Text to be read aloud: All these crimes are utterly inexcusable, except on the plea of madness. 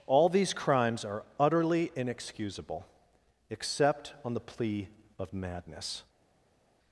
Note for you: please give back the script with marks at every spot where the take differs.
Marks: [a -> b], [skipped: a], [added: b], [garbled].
All these crimes are utterly inexcusable, except on the plea of madness.